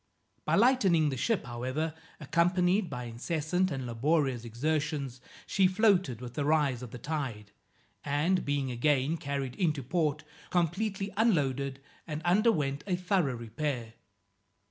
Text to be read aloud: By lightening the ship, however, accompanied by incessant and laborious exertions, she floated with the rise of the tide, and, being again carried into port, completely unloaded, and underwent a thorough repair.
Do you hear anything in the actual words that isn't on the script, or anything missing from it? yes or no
no